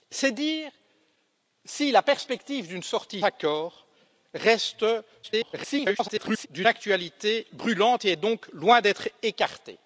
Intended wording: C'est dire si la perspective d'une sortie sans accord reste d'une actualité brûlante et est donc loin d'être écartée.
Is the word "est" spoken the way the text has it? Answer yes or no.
yes